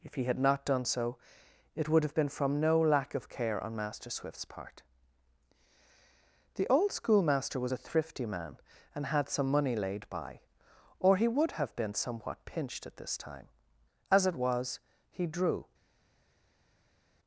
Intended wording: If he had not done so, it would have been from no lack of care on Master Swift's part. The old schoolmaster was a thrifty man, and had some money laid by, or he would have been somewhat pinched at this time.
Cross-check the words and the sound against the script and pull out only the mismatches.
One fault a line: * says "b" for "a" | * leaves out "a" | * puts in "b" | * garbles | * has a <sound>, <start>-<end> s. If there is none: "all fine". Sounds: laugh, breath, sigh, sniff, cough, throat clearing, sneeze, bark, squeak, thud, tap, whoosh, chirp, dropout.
* puts in "As it was he drew"